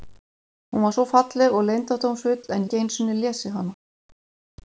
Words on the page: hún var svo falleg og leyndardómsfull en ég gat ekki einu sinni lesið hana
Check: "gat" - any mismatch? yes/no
yes